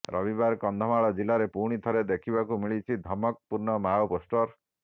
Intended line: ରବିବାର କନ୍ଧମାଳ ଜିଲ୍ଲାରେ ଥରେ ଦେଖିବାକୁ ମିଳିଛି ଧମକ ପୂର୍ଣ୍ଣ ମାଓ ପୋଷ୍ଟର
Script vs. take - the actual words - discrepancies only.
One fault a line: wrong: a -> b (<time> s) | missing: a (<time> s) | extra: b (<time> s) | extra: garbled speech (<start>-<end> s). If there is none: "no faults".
extra: ପୁଣି (1.5 s)